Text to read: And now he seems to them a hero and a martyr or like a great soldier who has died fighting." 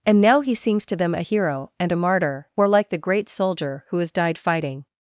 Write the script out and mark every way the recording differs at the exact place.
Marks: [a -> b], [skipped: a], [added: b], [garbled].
And now he seems to them a hero and a martyr or like [a -> the] great soldier who has died fighting."